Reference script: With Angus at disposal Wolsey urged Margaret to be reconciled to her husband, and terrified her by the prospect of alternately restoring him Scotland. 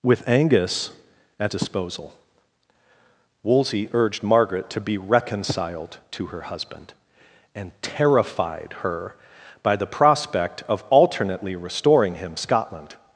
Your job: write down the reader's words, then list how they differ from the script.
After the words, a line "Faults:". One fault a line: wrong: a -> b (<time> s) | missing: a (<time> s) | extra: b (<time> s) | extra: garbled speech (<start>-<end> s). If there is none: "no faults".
With Angus at disposal Wolsey urged Margaret to be reconciled to her husband, and terrified her by the prospect of alternately restoring him Scotland.
Faults:
no faults